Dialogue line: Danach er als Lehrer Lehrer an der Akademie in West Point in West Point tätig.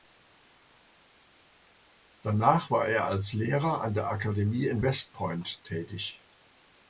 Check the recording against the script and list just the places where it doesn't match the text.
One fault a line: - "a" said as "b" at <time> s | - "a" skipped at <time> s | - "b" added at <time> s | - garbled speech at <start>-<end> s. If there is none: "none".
- "war" added at 2.7 s
- "Lehrer" skipped at 3.8 s
- "in West Point" skipped at 5.6 s